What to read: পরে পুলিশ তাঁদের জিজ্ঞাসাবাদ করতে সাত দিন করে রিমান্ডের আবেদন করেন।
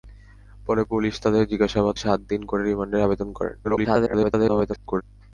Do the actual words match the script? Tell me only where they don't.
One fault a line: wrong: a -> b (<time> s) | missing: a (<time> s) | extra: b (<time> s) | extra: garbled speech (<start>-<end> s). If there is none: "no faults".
missing: করতে (2.0 s)
extra: garbled speech (3.6-5.0 s)